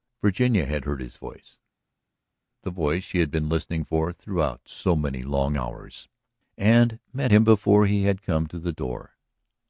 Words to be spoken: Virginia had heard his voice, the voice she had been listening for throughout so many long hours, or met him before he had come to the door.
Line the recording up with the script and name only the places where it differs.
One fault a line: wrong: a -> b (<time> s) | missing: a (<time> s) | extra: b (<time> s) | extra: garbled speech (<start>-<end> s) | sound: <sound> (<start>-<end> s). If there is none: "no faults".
wrong: or -> and (6.6 s)